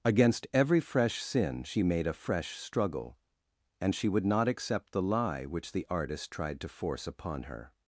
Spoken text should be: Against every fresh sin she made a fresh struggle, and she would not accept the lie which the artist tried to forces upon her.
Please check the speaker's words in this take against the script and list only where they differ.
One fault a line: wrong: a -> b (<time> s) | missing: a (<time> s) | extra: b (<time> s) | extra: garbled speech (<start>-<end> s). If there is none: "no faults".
wrong: forces -> force (6.7 s)